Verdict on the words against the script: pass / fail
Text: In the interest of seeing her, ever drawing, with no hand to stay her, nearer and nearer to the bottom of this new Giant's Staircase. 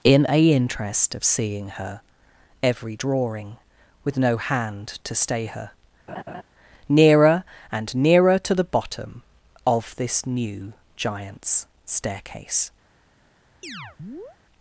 fail